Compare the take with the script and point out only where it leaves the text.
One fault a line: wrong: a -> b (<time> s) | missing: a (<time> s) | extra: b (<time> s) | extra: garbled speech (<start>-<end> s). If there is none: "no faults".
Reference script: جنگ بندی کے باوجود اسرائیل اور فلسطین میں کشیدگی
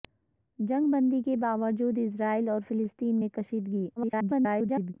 extra: garbled speech (4.0-4.9 s)